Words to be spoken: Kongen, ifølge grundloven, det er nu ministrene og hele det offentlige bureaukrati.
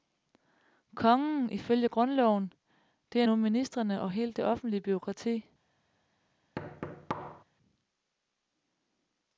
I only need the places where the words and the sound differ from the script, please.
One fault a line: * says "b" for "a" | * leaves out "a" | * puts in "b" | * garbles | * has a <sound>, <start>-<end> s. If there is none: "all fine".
* has a thud, 6.6-7.4 s